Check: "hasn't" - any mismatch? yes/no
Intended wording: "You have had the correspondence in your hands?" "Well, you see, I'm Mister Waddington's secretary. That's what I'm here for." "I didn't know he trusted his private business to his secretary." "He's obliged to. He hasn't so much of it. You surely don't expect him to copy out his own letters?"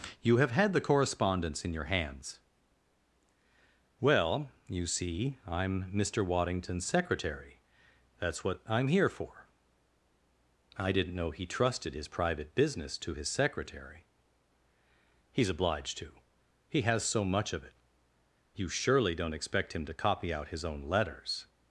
yes